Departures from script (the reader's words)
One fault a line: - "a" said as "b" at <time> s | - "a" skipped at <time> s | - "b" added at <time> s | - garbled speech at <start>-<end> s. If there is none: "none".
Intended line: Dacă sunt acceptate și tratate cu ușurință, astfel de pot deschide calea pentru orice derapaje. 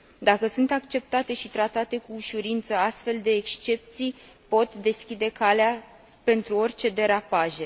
- "excepții" added at 3.3 s